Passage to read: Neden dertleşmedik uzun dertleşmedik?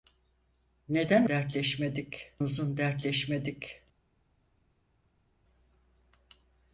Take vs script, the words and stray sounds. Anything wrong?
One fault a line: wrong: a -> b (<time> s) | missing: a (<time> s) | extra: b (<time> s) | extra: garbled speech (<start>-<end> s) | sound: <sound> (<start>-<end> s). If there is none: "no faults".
no faults